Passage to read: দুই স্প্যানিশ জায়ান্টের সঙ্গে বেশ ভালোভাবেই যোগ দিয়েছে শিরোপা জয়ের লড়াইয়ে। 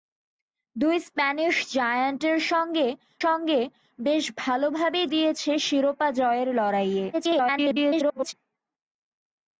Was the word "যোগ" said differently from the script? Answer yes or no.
yes